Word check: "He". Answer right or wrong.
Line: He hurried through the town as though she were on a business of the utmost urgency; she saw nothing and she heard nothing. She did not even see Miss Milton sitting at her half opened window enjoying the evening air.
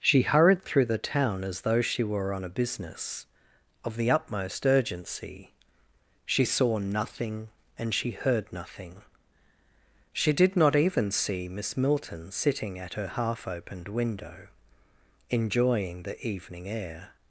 wrong